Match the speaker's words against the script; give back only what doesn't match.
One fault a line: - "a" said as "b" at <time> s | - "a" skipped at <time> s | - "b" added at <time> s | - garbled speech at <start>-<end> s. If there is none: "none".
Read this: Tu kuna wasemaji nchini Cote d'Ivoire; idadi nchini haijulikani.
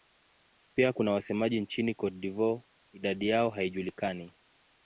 - "Tu" said as "Pia" at 0.8 s
- "nchini" said as "yao" at 3.3 s